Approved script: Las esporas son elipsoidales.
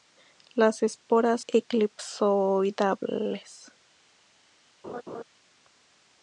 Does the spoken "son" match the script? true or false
false